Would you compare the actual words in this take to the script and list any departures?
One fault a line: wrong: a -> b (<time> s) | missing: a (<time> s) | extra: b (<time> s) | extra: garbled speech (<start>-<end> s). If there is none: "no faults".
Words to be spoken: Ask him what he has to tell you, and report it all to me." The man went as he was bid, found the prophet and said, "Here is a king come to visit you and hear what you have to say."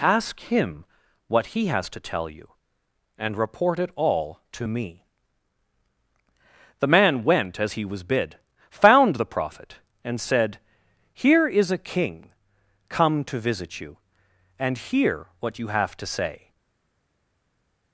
no faults